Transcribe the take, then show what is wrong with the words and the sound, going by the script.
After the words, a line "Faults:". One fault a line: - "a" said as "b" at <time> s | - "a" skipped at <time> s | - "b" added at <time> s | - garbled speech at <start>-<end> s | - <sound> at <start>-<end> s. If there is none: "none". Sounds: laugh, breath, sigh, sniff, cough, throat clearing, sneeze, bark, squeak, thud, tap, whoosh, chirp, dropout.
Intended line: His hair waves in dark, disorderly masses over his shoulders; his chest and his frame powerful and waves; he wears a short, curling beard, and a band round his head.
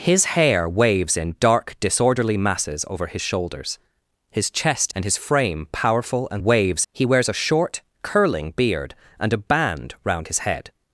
His hair waves in dark, disorderly masses over his shoulders; his chest and his frame powerful and waves; he wears a short, curling beard, and a band round his head.
Faults:
none